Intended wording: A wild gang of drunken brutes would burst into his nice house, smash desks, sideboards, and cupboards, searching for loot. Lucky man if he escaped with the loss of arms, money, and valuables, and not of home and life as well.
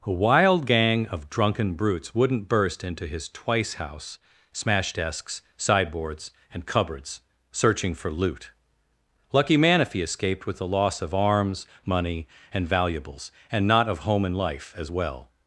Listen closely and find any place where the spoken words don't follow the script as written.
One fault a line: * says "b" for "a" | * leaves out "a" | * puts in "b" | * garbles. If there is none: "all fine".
* says "wouldn't" for "would"
* says "twice" for "nice"